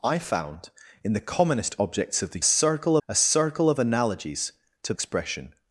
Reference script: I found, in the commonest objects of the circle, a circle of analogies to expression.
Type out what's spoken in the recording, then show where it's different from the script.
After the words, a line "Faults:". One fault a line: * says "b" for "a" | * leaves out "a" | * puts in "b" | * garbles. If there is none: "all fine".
I found, in the commonest objects of the circle, a circle of analogies to expression.
Faults:
all fine